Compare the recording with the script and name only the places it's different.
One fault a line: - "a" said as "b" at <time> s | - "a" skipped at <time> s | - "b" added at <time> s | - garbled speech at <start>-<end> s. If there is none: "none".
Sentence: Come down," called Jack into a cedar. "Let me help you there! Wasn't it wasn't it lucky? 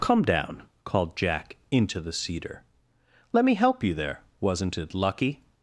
- "a" said as "the" at 2.0 s
- "wasn't it" skipped at 4.9 s